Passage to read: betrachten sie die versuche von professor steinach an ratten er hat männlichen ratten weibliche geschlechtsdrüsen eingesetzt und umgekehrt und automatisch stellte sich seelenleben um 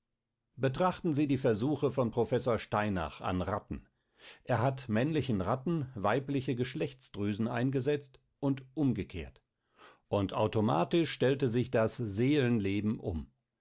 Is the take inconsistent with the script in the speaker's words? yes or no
yes